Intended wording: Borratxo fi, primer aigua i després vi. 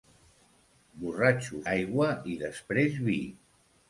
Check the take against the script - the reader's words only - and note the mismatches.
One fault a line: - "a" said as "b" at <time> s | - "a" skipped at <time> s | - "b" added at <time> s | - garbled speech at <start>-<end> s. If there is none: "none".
- "fi primer" skipped at 1.6 s